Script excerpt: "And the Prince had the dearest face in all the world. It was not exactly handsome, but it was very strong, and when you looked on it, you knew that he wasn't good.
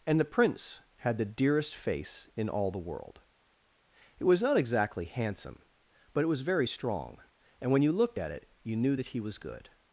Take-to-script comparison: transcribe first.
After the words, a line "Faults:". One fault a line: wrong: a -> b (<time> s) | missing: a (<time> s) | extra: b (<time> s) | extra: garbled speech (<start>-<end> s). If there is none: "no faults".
"And the Prince had the dearest face in all the world. It was not exactly handsome, but it was very strong, and when you looked at it, you knew that he was good.
Faults:
wrong: on -> at (8.2 s)
wrong: wasn't -> was (9.2 s)